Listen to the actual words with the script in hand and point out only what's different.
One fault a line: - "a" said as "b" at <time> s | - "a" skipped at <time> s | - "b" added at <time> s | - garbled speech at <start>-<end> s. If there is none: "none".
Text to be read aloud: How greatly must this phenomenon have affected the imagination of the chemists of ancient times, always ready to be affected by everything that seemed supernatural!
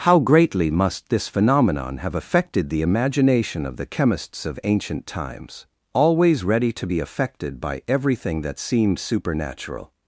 none